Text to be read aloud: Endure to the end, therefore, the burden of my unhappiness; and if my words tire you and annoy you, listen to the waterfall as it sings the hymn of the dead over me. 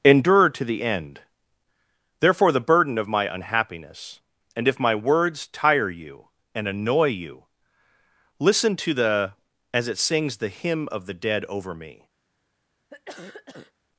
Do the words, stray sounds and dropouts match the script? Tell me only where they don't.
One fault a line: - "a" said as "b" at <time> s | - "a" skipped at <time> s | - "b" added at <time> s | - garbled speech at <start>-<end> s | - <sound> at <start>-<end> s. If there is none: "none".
- "waterfall" skipped at 9.3 s
- cough at 12.9-13.7 s